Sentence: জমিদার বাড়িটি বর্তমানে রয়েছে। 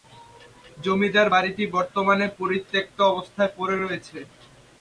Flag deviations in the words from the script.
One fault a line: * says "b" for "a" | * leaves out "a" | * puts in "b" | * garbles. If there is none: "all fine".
* puts in "পরিত্যক্ত অবস্থায় পড়ে"